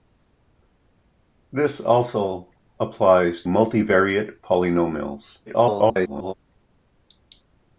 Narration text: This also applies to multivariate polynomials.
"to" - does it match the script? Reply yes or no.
no